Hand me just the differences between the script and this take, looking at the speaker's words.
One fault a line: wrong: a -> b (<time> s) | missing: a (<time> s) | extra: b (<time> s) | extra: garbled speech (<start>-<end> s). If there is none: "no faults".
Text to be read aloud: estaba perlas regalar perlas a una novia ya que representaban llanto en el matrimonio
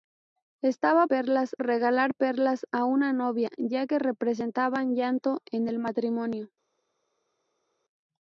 no faults